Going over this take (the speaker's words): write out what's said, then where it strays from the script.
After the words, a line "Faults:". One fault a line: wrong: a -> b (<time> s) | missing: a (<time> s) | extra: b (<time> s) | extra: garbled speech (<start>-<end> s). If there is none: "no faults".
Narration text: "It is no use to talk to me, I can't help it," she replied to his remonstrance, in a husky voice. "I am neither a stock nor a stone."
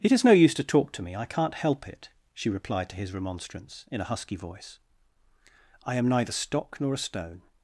"It is no use to talk to me, I can't help it," she replied to his remonstrance, in a husky voice. "I am neither stock nor a stone."
Faults:
missing: a (6.3 s)